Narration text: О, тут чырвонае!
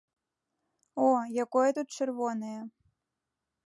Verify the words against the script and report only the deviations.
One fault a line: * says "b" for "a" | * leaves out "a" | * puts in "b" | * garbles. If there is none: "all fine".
* puts in "якое"